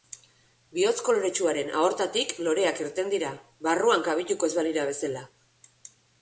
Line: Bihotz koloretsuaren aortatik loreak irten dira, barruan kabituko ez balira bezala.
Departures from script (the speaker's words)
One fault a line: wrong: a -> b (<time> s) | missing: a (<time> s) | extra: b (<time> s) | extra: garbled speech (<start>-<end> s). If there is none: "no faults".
no faults